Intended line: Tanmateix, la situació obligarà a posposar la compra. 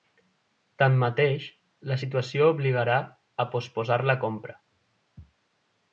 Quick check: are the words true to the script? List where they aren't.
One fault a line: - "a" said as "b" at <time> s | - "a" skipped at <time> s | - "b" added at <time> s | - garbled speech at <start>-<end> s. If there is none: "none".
none